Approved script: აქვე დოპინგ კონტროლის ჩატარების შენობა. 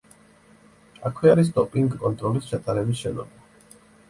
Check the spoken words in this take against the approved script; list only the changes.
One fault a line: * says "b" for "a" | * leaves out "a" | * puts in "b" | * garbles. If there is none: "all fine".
* puts in "არის"